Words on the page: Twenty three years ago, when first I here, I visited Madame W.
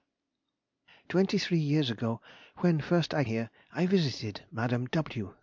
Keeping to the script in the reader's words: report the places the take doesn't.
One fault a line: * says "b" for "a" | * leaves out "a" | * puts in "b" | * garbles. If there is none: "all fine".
all fine